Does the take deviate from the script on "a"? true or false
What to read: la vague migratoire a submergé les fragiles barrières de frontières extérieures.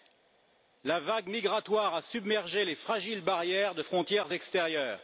false